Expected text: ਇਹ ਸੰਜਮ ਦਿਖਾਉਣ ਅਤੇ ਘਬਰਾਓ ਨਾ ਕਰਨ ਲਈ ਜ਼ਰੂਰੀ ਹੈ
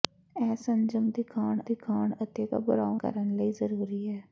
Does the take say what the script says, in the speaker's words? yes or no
no